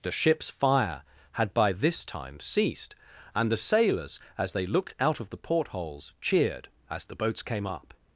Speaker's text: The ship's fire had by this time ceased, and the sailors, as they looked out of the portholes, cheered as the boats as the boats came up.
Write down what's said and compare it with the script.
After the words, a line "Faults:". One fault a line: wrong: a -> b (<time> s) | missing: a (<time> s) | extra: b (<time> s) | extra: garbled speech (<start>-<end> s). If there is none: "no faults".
The ship's fire had by this time ceased, and the sailors, as they looked out of the portholes, cheered as the boats came up.
Faults:
missing: as the boats (7.4 s)